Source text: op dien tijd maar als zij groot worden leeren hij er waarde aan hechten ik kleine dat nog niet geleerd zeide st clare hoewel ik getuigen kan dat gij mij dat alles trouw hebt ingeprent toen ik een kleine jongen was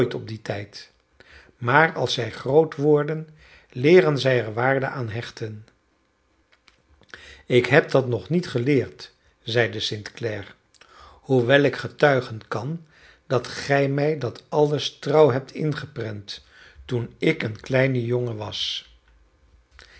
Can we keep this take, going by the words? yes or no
no